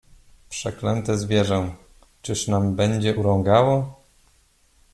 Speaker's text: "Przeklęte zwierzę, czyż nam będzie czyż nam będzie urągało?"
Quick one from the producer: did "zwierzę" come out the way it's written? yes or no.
yes